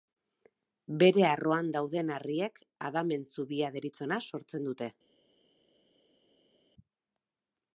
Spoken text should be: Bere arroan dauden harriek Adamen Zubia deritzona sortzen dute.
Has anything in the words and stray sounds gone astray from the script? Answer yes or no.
no